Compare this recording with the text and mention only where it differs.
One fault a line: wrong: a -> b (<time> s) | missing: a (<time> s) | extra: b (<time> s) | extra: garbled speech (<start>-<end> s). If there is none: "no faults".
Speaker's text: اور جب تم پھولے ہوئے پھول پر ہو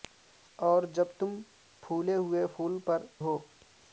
no faults